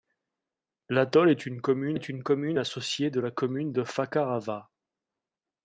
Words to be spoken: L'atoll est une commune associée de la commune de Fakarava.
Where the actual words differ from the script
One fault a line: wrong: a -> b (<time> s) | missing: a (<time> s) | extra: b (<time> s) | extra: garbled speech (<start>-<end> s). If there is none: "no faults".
extra: est une commune (1.9 s)